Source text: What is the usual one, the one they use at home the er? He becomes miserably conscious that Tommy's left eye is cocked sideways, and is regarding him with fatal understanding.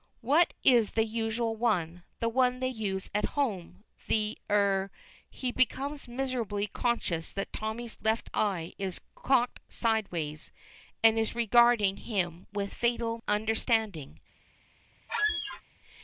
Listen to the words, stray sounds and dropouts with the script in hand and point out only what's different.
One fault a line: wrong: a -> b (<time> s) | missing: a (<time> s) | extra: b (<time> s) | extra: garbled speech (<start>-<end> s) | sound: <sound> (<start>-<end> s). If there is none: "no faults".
sound: squeak (15.1-15.6 s)